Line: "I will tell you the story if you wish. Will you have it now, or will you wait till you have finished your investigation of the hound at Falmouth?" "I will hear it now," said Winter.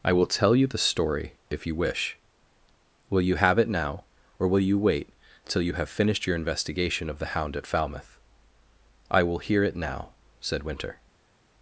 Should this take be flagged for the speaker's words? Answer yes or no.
no